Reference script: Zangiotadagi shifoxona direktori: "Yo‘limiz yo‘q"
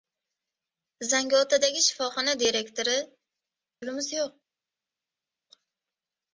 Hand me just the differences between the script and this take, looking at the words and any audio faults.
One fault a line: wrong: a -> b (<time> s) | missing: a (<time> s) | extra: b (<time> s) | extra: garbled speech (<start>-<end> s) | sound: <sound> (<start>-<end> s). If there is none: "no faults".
no faults